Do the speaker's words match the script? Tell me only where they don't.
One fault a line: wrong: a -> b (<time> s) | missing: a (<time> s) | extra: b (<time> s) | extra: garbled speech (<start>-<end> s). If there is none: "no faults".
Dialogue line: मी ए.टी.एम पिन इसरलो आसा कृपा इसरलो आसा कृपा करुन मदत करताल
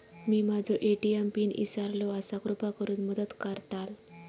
extra: माझो (0.4 s)
missing: इसरलो आसा कृपा (2.7 s)